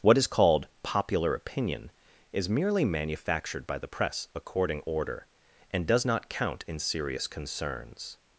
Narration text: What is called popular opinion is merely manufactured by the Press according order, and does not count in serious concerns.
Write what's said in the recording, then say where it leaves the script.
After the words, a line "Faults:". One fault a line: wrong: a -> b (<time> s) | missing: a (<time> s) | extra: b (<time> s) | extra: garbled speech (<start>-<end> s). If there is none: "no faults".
What is called popular opinion is merely manufactured by the Press according order, and does not count in serious concerns.
Faults:
no faults